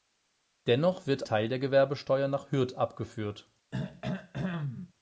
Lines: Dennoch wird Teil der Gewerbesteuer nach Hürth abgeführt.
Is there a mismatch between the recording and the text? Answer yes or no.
no